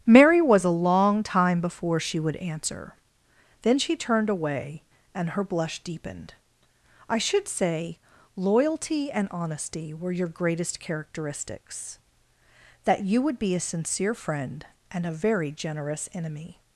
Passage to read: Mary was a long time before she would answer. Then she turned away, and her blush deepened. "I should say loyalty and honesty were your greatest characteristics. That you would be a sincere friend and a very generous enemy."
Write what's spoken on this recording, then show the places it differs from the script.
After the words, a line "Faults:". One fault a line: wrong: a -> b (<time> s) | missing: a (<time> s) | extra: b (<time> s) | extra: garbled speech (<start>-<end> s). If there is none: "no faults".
Mary was a long time before she would answer. Then she turned away, and her blush deepened. "I should say loyalty and honesty were your greatest characteristics. That you would be a sincere friend and a very generous enemy."
Faults:
no faults